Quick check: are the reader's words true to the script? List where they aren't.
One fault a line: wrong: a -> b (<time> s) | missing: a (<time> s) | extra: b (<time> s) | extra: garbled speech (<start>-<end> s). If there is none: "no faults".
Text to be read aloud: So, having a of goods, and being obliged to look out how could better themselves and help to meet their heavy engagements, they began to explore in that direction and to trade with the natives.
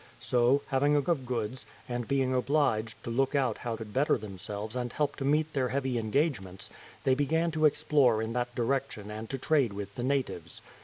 no faults